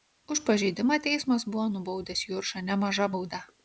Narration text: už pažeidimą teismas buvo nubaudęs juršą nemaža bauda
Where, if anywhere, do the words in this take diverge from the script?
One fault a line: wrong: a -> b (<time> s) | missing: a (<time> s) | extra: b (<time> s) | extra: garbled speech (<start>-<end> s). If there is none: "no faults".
no faults